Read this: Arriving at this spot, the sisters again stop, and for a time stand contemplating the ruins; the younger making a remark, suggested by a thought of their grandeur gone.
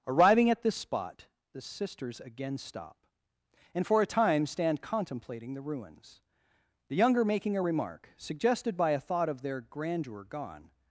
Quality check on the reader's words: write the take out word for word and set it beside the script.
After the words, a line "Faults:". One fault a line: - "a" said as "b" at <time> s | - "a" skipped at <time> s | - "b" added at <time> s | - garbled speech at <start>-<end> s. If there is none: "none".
Arriving at this spot, the sisters again stop, and for a time stand contemplating the ruins; the younger making a remark, suggested by a thought of their grandeur gone.
Faults:
none